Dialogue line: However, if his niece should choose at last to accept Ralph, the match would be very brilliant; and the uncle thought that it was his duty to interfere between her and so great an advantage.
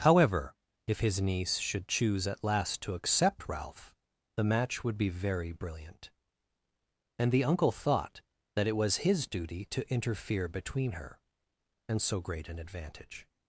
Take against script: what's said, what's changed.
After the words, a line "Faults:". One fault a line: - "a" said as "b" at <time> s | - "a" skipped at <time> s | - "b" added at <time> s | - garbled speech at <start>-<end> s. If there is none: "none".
However, if his niece should choose at last to accept Ralph, the match would be very brilliant; and the uncle thought that it was his duty to interfere between her and so great an advantage.
Faults:
none